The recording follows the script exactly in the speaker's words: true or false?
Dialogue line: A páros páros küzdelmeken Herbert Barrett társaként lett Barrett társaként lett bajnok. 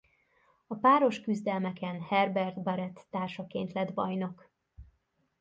false